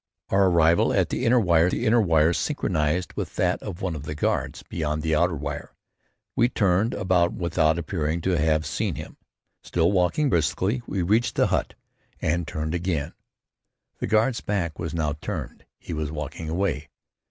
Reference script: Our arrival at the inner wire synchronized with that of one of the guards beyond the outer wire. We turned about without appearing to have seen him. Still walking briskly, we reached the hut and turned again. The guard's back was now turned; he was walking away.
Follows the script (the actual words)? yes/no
no